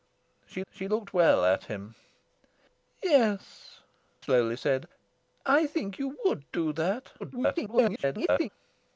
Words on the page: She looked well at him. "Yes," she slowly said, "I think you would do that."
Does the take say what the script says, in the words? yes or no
no